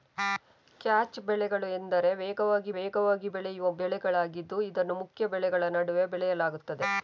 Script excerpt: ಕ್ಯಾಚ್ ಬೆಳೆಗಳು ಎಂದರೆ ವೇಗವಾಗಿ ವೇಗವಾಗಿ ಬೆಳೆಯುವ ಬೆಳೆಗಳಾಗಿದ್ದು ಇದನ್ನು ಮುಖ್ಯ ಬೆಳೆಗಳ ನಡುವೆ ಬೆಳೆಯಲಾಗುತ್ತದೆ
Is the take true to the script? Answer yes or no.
yes